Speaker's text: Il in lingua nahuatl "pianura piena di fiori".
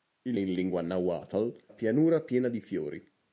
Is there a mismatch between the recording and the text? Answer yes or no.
no